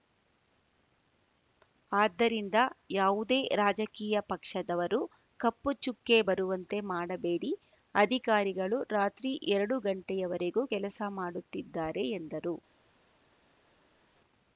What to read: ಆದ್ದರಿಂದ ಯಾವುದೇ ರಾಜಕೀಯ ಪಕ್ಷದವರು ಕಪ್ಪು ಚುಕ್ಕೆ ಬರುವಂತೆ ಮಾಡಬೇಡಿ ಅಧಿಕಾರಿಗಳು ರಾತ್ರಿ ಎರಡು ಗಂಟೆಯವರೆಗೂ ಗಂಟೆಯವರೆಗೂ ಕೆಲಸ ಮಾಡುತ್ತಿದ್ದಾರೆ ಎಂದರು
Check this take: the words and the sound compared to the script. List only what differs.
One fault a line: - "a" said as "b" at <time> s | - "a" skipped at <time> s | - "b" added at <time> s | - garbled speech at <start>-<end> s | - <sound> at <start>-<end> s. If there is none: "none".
- "ಗಂಟೆಯವರೆಗೂ" skipped at 10.6 s